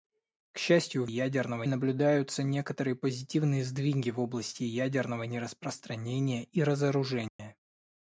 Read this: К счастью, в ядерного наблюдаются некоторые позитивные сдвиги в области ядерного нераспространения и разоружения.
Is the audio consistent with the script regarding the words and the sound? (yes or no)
no